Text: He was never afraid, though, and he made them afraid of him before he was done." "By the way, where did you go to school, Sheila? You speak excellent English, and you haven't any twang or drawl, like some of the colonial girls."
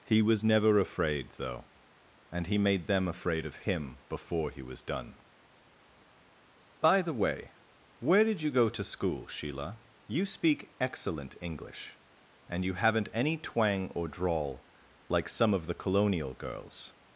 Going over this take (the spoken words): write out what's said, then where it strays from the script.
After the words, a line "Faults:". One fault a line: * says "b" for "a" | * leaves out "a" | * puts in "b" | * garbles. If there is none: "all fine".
He was never afraid, though, and he made them afraid of him before he was done." "By the way, where did you go to school, Sheila? You speak excellent English, and you haven't any twang or drawl, like some of the colonial girls."
Faults:
all fine